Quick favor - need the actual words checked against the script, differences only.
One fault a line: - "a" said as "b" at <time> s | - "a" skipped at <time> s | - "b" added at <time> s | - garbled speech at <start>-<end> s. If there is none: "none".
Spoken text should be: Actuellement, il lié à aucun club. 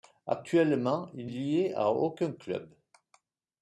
none